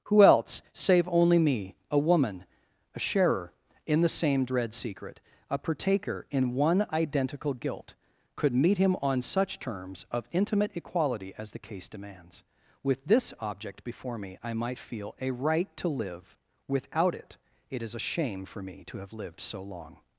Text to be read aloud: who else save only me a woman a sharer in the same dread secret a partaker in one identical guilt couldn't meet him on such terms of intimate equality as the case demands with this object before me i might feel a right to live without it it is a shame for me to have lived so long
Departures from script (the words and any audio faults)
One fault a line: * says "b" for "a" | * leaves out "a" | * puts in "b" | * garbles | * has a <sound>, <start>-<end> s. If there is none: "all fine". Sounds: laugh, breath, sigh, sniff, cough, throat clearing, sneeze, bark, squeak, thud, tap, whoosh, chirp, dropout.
* says "could" for "couldn't"